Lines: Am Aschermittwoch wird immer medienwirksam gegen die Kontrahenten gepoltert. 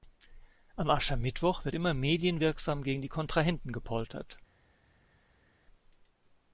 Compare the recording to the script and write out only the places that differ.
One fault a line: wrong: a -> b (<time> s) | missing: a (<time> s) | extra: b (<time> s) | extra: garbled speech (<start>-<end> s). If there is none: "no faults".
no faults